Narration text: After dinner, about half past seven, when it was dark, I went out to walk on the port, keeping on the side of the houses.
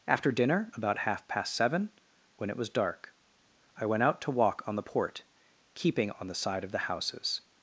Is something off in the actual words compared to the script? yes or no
no